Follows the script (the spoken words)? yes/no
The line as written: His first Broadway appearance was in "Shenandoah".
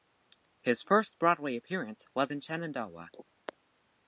yes